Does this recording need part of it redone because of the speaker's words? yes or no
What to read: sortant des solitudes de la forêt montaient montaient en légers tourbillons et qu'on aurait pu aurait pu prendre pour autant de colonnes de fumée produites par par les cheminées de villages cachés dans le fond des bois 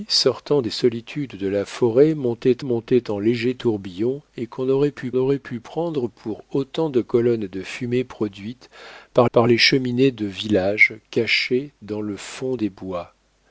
no